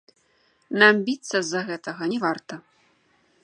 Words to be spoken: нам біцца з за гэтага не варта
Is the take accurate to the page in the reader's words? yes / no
yes